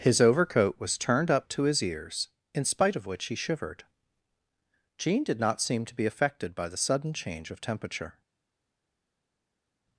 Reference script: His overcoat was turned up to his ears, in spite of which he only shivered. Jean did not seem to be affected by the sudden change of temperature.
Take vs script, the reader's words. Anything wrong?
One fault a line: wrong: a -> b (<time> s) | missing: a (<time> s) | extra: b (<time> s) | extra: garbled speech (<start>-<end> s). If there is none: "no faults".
missing: only (3.4 s)